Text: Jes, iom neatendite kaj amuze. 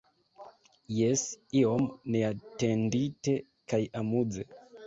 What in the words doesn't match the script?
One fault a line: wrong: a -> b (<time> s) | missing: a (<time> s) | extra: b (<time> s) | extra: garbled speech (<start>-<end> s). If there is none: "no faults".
no faults